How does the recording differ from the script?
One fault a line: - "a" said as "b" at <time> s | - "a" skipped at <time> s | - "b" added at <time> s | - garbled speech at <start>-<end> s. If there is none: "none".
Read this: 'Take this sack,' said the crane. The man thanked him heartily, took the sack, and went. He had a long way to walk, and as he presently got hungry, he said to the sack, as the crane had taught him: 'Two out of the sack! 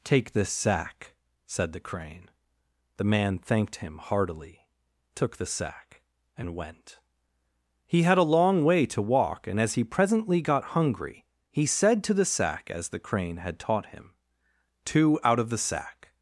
none